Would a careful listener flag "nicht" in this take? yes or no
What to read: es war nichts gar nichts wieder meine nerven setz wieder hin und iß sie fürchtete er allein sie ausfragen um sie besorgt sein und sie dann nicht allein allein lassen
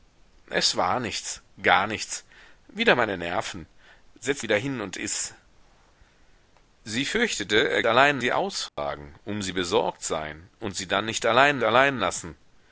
no